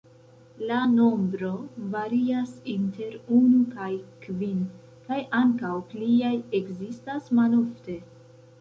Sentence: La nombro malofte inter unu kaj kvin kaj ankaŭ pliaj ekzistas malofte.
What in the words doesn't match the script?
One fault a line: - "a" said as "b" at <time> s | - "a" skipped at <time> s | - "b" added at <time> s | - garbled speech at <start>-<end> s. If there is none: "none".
- "malofte" said as "varias" at 1.9 s